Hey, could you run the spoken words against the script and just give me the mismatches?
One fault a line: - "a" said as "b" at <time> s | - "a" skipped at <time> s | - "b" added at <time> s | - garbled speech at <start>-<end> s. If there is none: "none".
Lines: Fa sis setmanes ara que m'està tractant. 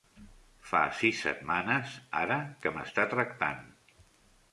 none